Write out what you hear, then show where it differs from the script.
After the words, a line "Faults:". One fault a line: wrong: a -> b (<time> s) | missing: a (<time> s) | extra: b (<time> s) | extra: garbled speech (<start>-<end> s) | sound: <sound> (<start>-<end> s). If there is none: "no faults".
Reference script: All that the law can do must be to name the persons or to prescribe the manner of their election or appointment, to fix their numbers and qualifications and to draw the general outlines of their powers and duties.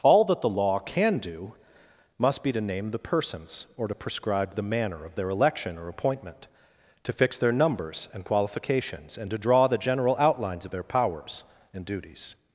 All that the law can do must be to name the persons or to prescribe the manner of their election or appointment, to fix their numbers and qualifications and to draw the general outlines of their powers and duties.
Faults:
no faults